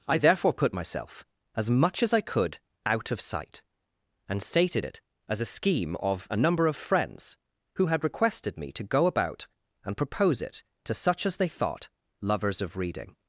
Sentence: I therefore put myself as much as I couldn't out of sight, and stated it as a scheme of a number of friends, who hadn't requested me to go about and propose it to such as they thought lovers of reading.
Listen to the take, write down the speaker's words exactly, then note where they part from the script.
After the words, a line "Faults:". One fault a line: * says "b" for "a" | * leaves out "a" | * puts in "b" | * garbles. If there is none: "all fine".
I therefore put myself as much as I could out of sight, and stated it as a scheme of a number of friends, who had requested me to go about and propose it to such as they thought lovers of reading.
Faults:
* says "could" for "couldn't"
* says "had" for "hadn't"